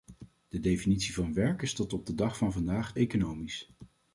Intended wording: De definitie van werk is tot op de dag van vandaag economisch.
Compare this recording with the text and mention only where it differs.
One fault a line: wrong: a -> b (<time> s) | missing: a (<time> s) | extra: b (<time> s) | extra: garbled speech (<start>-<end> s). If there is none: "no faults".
no faults